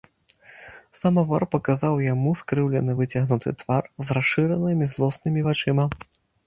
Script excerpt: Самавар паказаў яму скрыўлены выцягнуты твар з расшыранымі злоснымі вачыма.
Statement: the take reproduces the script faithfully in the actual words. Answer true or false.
true